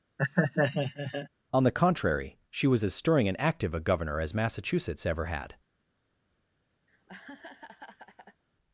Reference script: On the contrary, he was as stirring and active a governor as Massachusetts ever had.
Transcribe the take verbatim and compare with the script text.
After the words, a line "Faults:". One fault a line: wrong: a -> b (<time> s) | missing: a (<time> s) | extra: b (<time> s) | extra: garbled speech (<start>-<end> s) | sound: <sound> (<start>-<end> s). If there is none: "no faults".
On the contrary, she was as stirring and active a governor as Massachusetts ever had.
Faults:
sound: laugh (0.2-1.3 s)
wrong: he -> she (2.5 s)
sound: laugh (6.9-8.4 s)